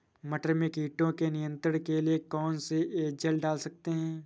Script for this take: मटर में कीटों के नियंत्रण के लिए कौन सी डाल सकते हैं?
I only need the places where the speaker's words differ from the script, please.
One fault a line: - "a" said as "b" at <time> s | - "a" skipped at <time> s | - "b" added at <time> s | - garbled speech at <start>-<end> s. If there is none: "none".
- "एजल" added at 3.1 s